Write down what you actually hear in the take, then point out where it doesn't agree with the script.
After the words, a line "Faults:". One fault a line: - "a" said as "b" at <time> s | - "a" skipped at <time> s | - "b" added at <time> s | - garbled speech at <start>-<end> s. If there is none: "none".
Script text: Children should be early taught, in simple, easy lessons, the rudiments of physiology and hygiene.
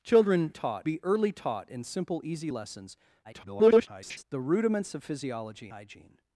Children taught be early taught, in simple, easy lessons, [garbled] the rudiments of physiology hygiene.
Faults:
- "should" said as "taught" at 0.5 s
- garbled speech at 3.2-4.2 s
- "and" skipped at 5.7 s